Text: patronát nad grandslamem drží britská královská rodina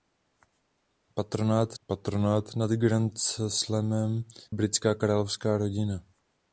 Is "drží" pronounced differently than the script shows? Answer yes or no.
yes